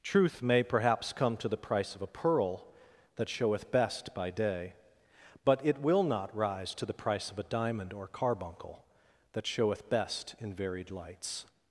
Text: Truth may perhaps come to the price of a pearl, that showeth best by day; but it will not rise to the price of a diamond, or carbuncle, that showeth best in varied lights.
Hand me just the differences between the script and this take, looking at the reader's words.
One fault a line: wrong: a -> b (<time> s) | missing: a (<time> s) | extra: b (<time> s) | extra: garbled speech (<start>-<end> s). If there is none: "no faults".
no faults